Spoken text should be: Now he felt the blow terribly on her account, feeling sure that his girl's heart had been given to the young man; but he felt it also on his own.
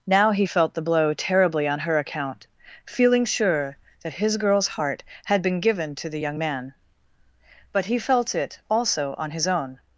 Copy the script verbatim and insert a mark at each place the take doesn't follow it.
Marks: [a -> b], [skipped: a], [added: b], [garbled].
Now he felt the blow terribly on her account, feeling sure that his girl's heart had been given to the young man; but he felt it also on his own.